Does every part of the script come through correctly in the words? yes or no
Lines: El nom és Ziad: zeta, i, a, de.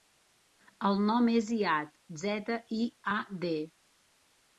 yes